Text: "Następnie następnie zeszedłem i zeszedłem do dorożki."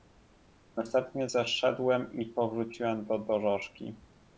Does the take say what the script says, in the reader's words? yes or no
no